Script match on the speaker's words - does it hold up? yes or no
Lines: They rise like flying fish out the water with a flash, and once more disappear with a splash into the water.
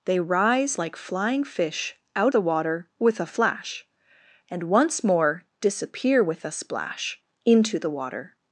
yes